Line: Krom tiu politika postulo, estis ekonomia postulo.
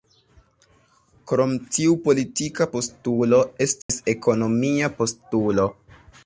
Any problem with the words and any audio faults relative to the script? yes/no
yes